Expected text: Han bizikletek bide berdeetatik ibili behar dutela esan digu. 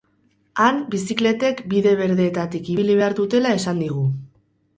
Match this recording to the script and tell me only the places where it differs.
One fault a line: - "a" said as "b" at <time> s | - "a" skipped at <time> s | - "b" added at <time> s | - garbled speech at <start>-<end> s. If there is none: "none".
none